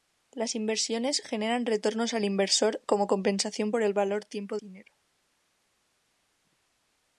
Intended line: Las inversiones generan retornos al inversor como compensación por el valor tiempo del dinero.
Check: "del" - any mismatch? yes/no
yes